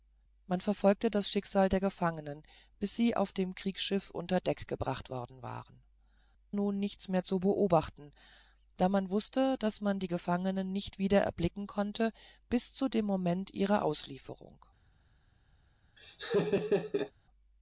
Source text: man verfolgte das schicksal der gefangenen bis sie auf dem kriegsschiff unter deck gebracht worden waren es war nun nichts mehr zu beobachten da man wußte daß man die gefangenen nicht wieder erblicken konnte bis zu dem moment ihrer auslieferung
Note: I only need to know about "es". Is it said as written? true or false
false